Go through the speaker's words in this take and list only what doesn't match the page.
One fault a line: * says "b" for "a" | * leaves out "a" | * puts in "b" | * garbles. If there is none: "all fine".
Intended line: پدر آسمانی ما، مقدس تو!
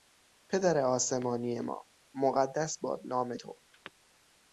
* puts in "باد نام"